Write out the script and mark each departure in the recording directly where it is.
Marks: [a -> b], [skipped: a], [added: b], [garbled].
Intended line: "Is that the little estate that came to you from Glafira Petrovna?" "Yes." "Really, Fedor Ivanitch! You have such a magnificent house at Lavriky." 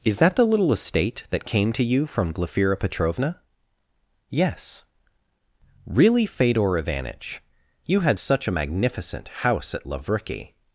"Is that the little estate that came to you from Glafira Petrovna?" "Yes." "Really, Fedor Ivanitch! You [have -> had] such a magnificent house at Lavriky."